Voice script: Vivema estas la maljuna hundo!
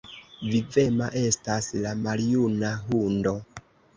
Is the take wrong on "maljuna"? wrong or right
right